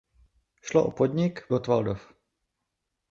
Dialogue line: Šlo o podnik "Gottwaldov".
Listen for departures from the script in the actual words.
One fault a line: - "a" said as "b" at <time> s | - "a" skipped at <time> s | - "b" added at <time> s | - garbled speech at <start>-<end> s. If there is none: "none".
none